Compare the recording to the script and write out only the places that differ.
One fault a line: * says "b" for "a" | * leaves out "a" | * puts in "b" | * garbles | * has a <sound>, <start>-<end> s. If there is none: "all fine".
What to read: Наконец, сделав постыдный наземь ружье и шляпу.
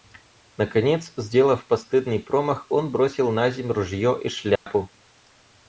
* puts in "промах он бросил"
* has a dropout, 4.6-4.7 s